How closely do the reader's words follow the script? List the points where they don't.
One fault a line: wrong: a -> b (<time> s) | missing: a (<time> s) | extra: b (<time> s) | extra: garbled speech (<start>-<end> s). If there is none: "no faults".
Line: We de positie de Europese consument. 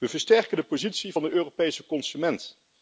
extra: versterken (0.1 s)
extra: van (1.1 s)